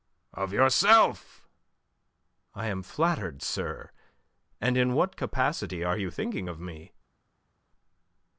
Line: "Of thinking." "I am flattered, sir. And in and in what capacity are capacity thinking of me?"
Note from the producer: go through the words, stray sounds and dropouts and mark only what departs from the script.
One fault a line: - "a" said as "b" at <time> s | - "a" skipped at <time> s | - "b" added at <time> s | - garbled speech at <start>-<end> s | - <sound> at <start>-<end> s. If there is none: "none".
- "thinking" said as "yourself" at 0.5 s
- "and in" skipped at 4.9 s
- "capacity" said as "you" at 6.0 s